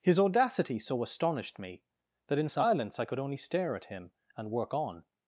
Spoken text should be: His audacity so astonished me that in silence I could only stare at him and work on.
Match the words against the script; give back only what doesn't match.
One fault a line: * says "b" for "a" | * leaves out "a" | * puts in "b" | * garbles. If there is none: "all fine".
all fine